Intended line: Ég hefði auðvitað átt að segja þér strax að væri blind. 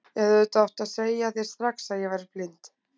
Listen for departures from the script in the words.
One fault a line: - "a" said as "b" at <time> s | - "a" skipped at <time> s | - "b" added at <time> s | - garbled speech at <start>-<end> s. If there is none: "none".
- "ég" added at 2.1 s